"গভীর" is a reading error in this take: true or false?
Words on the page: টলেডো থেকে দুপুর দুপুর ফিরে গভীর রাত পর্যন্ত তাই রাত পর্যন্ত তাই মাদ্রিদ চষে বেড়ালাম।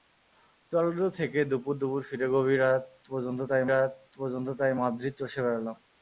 false